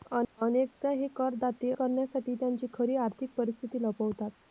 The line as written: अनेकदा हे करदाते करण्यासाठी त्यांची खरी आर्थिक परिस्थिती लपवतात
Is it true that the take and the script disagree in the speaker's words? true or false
false